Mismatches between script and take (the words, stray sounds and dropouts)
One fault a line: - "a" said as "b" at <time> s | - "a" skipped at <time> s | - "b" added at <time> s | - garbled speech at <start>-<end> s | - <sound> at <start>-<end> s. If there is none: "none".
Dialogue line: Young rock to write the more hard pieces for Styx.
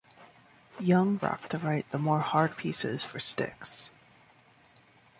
none